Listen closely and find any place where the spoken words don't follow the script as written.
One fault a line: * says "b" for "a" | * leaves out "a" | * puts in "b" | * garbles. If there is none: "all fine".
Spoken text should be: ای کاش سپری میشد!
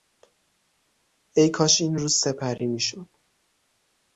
* puts in "این روز"